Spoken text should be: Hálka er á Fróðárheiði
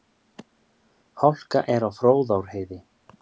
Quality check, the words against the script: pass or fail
pass